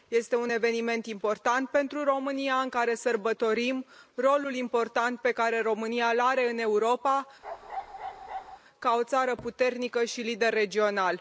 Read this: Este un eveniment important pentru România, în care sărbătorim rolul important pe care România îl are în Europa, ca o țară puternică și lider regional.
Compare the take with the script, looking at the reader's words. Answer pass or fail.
pass